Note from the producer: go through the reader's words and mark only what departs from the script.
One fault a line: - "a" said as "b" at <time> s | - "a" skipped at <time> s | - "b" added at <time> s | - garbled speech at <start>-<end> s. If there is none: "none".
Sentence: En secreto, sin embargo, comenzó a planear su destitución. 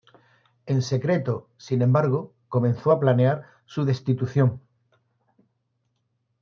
none